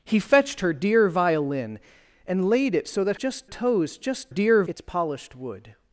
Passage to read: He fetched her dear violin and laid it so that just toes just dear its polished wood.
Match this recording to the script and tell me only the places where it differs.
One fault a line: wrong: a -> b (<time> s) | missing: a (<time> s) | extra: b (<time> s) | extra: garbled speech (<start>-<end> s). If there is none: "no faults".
no faults